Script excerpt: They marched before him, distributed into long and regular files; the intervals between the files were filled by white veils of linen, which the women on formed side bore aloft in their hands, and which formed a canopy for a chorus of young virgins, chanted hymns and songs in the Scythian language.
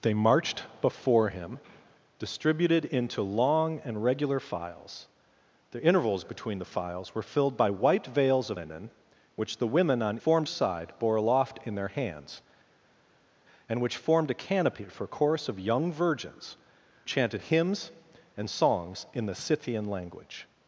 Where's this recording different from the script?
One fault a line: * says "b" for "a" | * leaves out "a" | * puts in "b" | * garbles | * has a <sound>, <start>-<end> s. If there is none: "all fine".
all fine